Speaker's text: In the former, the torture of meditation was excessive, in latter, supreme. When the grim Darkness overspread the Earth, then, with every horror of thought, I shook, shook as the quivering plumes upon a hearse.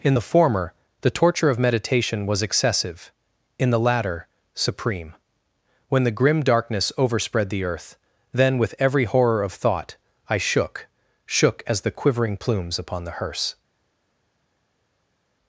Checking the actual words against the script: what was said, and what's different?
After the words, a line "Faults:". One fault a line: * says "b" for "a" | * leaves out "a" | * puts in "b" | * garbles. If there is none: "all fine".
In the former, the torture of meditation was excessive, in the latter, supreme. When the grim Darkness overspread the Earth, then, with every horror of thought, I shook, shook as the quivering plumes upon the hearse.
Faults:
* puts in "the"
* says "the" for "a"